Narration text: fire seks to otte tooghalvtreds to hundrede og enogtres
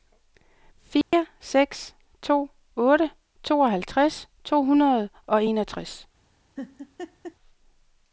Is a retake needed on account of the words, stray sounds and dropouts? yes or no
yes